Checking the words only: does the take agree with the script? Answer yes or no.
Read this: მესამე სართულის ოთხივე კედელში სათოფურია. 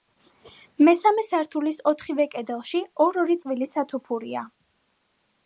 no